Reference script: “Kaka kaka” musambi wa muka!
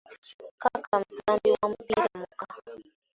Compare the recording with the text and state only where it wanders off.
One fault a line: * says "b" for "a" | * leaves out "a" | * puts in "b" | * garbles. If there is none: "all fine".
* leaves out "kaka"
* puts in "mupiira"